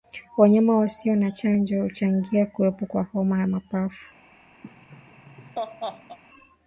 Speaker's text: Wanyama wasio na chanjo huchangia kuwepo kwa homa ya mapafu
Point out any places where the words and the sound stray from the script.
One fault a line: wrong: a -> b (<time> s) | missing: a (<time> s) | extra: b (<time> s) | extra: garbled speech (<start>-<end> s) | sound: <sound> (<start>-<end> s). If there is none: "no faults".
sound: laugh (4.6-6.2 s)